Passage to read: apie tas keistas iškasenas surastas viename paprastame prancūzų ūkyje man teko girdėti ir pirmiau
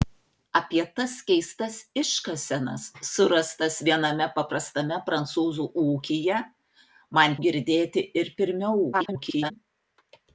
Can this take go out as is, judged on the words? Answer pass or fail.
fail